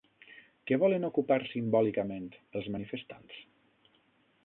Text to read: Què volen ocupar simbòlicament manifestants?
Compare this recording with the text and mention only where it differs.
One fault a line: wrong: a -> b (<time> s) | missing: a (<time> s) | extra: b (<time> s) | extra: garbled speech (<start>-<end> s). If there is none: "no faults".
extra: els (2.6 s)